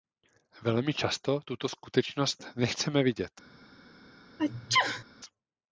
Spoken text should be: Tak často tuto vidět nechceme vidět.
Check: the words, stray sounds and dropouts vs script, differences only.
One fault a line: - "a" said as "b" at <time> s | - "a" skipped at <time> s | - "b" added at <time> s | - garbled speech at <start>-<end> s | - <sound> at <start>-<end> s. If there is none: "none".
- "Tak" said as "Velmi" at 0.6 s
- "vidět" said as "skutečnost" at 1.7 s
- sneeze at 4.4-5.0 s